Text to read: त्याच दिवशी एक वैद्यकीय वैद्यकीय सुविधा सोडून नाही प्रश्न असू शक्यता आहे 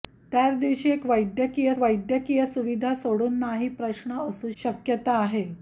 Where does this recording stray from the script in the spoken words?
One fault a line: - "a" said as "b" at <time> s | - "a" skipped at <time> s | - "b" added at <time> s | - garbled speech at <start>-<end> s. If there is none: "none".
none